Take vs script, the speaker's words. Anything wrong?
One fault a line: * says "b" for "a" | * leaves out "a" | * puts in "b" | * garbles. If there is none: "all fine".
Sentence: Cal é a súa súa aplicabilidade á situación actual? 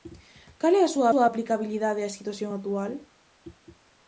all fine